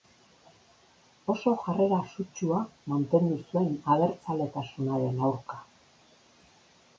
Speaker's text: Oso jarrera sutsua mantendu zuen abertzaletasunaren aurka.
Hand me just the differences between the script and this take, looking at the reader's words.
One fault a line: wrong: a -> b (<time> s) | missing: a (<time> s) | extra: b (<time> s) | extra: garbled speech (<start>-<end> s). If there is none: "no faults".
no faults